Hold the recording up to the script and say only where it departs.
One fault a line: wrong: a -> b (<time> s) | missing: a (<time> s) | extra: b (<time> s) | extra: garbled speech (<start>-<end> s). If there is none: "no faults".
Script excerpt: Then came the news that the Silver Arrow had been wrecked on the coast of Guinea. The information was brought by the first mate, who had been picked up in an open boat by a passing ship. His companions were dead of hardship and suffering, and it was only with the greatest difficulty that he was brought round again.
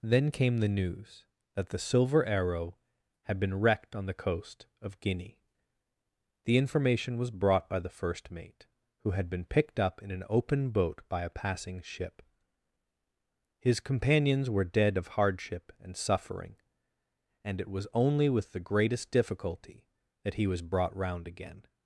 no faults